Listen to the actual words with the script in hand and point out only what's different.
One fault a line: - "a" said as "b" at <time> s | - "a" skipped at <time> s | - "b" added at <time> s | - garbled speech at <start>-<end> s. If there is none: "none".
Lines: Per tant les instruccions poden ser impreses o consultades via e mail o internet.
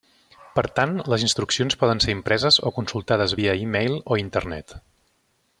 none